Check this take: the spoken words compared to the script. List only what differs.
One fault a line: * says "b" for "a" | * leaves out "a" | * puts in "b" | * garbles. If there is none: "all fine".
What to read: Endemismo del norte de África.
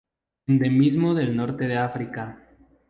all fine